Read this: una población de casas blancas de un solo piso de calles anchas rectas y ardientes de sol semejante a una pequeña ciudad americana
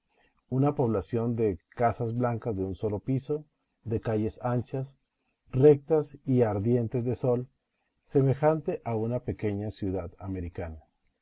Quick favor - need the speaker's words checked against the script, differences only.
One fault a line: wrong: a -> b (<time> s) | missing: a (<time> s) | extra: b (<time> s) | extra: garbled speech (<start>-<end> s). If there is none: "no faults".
no faults